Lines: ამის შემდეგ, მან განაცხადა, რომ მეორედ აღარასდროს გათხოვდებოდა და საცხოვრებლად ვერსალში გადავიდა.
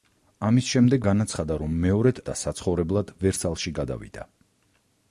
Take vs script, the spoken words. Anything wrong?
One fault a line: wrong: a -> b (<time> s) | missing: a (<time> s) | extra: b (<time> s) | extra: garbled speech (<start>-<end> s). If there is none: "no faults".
missing: მან (1.0 s)
missing: აღარასდროს გათხოვდებოდა (2.2 s)